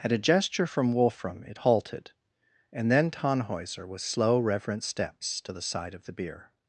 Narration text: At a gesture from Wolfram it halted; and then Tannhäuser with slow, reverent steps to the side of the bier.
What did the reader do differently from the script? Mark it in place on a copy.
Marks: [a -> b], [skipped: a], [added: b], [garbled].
At a gesture from Wolfram it halted; and then Tannhäuser with slow, reverent steps to the side of the bier.